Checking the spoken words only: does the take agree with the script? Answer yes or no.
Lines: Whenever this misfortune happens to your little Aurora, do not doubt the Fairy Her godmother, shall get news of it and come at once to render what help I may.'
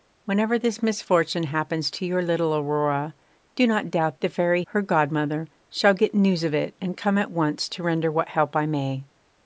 yes